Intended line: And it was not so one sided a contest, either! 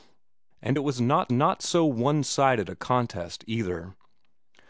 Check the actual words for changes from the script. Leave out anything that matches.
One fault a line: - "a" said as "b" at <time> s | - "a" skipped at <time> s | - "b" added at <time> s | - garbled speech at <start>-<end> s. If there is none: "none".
- "not" added at 1.3 s